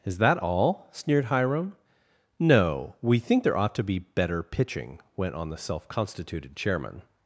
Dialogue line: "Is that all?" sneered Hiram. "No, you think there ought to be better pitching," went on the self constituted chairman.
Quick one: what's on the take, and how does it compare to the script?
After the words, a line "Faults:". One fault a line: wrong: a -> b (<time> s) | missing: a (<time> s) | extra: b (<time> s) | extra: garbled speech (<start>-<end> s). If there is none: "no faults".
"Is that all?" sneered Hiram. "No, we think there ought to be better pitching," went on the self constituted chairman.
Faults:
wrong: you -> we (3.0 s)